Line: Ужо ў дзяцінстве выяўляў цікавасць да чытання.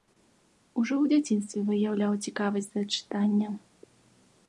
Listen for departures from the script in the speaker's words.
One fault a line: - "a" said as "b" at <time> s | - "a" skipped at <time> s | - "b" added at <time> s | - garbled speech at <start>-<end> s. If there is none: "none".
none